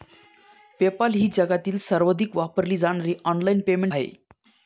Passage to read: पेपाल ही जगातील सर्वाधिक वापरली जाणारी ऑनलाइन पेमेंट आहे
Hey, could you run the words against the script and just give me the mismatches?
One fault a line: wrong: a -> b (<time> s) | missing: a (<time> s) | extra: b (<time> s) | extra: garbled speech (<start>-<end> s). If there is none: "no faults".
no faults